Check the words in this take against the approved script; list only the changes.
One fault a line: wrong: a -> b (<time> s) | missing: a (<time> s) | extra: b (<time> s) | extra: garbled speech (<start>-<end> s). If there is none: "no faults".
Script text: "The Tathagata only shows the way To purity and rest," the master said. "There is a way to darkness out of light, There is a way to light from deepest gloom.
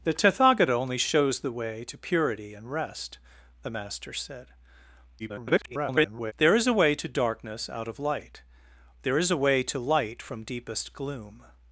extra: garbled speech (5.2-6.3 s)